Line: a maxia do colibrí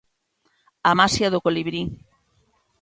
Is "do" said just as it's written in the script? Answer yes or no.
yes